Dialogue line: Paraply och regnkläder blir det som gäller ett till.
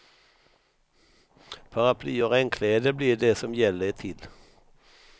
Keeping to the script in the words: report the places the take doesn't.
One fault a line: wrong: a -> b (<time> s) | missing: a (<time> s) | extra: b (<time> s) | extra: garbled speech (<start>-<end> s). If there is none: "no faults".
no faults